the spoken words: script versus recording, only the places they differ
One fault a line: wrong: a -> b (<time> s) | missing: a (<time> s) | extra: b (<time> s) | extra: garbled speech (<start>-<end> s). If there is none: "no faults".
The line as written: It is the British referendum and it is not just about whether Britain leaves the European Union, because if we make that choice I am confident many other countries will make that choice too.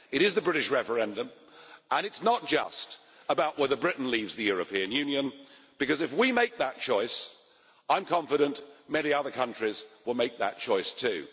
no faults